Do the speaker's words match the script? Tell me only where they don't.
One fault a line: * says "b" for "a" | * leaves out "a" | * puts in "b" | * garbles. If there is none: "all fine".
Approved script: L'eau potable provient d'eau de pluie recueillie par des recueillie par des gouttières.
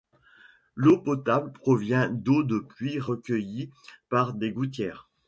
* leaves out "recueillie par des"